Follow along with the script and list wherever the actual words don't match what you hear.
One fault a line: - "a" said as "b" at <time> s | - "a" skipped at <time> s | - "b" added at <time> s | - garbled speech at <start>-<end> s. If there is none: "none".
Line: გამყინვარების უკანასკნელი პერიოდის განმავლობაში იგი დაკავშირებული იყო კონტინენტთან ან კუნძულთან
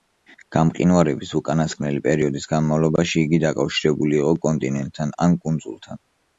none